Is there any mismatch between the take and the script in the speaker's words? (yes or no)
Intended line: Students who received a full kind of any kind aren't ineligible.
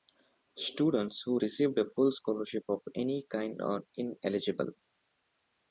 yes